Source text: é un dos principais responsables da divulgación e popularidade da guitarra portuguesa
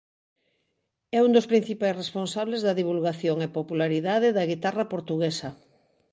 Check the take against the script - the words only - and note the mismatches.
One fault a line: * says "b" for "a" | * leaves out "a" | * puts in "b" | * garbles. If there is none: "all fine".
all fine